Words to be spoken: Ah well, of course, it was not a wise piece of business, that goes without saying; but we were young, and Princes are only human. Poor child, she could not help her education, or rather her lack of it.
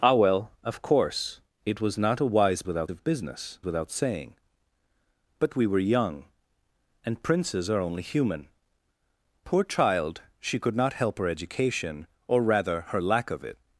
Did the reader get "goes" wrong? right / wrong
wrong